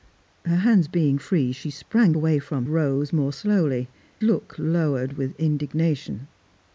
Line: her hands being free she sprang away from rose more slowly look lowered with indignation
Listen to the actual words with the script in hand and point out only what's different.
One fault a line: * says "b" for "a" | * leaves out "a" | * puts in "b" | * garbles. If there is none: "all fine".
all fine